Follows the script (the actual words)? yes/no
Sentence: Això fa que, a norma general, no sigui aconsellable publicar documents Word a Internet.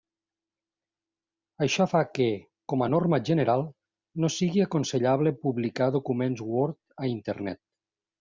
no